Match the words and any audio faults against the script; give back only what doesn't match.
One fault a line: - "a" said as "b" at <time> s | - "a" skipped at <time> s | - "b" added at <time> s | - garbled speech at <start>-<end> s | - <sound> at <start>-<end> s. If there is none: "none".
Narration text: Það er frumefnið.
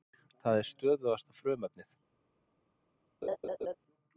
- "stöðugasta" added at 0.7 s
- laugh at 3.2-3.8 s